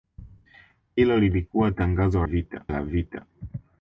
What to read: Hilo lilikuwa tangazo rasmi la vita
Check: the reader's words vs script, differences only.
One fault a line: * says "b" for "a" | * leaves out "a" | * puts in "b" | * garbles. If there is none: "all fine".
* says "vita" for "rasmi"